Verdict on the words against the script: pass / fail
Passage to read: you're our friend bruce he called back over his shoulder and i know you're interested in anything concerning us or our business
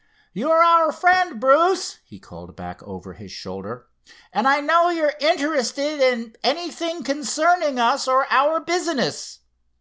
pass